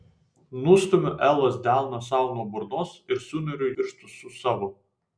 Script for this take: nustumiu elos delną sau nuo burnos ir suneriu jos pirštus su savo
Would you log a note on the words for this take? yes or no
yes